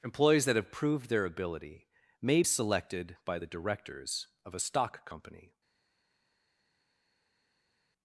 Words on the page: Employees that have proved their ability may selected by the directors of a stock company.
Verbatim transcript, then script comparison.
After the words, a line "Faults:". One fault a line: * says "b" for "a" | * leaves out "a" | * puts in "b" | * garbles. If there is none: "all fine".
Employees that have proved their ability may selected by the directors of a stock company.
Faults:
all fine